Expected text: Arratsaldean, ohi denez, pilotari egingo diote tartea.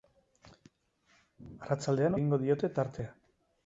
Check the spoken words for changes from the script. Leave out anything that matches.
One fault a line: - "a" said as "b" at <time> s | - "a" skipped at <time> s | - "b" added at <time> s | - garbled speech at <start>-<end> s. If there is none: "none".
- "ohi denez pilotari" skipped at 2.2 s